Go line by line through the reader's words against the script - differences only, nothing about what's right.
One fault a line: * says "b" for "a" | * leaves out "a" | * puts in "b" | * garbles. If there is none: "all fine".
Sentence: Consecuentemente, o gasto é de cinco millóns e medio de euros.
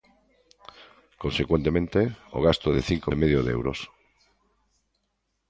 * leaves out "millóns"